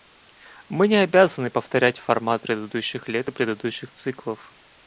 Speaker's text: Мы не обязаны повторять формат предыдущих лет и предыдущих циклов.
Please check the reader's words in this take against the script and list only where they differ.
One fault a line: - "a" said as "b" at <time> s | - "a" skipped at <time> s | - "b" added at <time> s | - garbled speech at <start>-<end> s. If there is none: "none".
none